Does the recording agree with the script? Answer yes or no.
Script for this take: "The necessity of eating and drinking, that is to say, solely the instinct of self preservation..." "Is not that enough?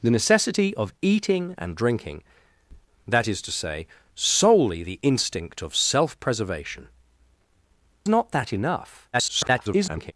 no